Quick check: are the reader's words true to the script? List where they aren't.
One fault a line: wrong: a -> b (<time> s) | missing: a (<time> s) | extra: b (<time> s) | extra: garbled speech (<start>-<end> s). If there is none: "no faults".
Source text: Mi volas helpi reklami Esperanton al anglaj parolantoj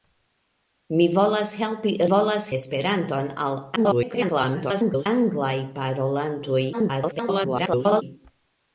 wrong: reklami -> volas (2.1 s)
extra: garbled speech (3.8-5.1 s)
extra: garbled speech (6.7-8.0 s)